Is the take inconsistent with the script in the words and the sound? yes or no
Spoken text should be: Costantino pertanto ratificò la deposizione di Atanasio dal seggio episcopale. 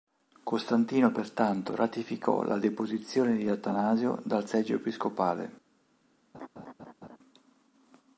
yes